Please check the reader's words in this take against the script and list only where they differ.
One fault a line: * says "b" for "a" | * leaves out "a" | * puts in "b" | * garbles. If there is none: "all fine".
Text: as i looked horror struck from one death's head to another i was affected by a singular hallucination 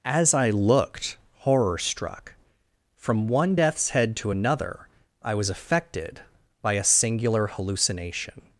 all fine